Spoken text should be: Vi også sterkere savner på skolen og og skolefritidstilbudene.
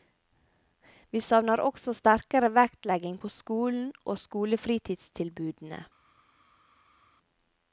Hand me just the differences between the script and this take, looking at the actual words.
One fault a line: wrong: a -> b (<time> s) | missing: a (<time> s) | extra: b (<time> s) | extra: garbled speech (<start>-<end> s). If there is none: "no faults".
extra: savner (1.2 s)
wrong: savner -> vektlegging (2.6 s)
missing: og (4.2 s)